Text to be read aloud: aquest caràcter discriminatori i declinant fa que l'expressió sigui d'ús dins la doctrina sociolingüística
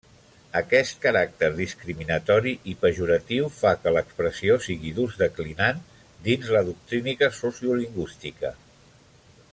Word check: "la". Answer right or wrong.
right